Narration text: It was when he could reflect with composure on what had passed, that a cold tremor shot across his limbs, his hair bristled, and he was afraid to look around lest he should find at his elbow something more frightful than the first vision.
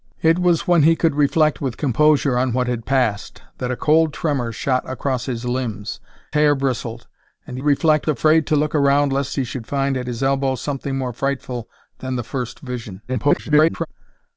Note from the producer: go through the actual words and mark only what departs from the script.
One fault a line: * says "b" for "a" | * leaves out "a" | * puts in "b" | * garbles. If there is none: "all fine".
* leaves out "his"
* says "reflect" for "was"
* garbles